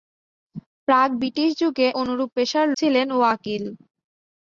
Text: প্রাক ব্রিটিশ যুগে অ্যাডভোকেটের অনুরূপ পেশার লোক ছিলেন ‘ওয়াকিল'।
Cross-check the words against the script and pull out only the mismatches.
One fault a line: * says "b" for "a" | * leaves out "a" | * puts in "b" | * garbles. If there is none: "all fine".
* leaves out "অ্যাডভোকেটের"
* leaves out "লোক"